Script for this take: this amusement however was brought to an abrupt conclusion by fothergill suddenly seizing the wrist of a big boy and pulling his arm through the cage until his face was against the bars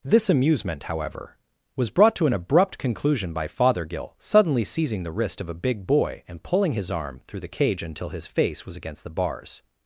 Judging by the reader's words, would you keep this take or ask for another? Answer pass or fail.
pass